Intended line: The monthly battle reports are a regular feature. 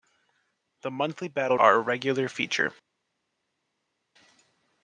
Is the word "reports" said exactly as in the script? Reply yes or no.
no